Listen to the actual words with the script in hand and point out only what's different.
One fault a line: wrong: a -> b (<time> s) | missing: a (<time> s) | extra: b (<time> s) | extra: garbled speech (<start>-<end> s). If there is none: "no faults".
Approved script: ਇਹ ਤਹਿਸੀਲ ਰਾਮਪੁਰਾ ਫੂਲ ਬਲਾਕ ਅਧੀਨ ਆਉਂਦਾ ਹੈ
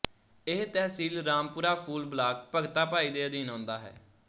extra: ਭਗਤਾ ਭਾਈ ਦੇ (2.5 s)